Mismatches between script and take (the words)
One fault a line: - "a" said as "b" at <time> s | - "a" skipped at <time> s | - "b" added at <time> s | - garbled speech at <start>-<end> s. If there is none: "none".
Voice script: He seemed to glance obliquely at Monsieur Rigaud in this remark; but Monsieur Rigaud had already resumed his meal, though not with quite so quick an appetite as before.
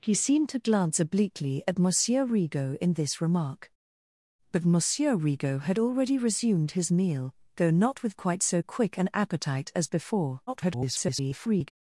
- garbled speech at 10.5-11.7 s